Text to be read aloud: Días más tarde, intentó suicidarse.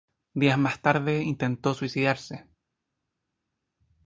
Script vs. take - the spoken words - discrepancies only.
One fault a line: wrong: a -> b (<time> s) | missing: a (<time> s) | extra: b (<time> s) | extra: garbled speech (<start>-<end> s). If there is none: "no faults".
no faults